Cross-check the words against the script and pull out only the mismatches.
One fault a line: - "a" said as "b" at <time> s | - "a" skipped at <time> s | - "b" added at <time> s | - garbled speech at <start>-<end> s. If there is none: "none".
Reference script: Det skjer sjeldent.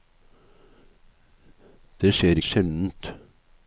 none